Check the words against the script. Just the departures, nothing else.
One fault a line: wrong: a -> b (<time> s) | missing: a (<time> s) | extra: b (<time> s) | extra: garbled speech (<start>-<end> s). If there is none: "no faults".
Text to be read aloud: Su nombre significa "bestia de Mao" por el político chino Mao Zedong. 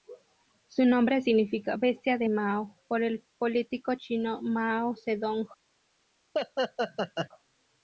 no faults